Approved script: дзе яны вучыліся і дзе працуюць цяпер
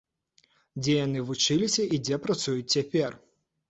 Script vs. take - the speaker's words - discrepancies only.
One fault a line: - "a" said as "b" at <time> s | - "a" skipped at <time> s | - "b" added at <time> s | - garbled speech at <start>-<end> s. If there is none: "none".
none